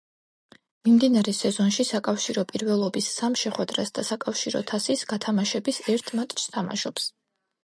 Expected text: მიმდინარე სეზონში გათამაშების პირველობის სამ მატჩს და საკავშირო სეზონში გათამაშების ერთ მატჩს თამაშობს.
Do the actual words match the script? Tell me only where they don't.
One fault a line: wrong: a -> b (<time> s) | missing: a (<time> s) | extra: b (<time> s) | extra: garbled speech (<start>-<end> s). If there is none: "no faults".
wrong: გათამაშების -> საკავშირო (1.9 s)
wrong: მატჩს -> შეხვედრას (3.4 s)
wrong: სეზონში -> თასის (4.7 s)